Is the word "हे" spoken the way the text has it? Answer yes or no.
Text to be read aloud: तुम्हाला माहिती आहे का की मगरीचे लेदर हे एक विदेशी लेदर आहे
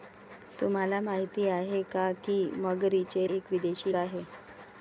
no